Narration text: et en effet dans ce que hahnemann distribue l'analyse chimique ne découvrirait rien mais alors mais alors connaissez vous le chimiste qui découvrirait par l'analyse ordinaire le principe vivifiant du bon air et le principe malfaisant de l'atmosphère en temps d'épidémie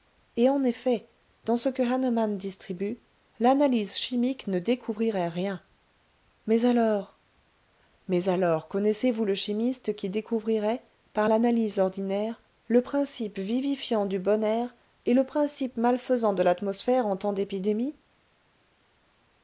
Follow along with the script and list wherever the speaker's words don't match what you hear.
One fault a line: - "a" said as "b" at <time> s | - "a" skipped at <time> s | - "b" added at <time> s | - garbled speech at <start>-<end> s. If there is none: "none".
none